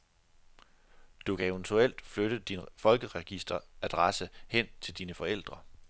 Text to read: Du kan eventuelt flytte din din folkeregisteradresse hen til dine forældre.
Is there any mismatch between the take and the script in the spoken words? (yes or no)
yes